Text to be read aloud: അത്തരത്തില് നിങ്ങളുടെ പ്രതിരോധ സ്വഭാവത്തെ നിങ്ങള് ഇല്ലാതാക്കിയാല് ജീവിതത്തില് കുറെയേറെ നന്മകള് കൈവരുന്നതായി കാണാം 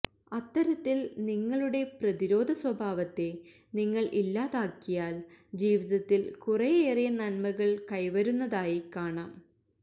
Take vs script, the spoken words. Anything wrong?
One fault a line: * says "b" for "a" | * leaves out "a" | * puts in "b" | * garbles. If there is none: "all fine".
all fine